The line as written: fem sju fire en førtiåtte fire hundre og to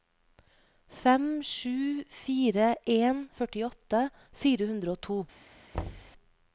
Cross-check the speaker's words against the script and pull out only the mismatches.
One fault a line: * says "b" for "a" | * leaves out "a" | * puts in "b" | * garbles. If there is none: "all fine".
all fine